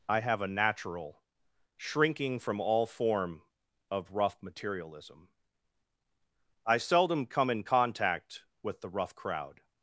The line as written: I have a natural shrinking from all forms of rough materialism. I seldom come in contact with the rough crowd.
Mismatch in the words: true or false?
true